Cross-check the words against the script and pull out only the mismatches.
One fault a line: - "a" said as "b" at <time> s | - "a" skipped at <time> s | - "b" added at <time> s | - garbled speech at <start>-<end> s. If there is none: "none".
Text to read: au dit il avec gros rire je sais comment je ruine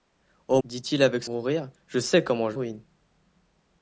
none